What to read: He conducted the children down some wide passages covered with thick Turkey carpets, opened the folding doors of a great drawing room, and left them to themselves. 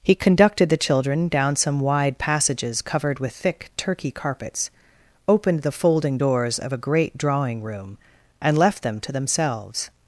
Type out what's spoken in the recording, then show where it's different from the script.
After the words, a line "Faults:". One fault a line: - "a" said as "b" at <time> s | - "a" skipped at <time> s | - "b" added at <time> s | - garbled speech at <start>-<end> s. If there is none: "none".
He conducted the children down some wide passages covered with thick Turkey carpets, opened the folding doors of a great drawing room, and left them to themselves.
Faults:
none